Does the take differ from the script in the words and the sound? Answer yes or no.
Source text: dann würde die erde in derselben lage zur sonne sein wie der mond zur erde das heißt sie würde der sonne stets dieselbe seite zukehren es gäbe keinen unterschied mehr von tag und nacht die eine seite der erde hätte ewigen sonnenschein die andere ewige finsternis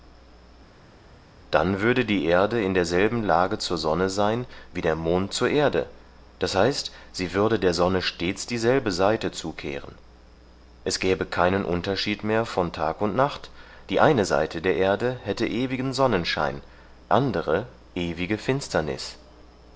yes